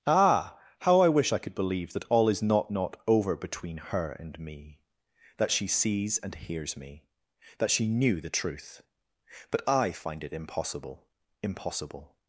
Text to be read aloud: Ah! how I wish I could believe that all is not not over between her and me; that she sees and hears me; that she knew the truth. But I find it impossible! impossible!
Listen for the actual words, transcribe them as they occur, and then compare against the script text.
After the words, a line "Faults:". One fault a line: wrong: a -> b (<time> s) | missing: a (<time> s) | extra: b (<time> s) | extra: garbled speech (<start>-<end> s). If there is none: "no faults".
Ah! how I wish I could believe that all is not not over between her and me; that she sees and hears me; that she knew the truth. But I find it impossible! impossible!
Faults:
no faults